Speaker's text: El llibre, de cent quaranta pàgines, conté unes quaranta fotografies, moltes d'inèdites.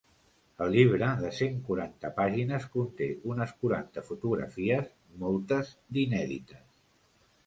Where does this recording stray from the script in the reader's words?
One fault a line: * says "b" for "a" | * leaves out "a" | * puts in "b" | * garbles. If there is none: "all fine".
all fine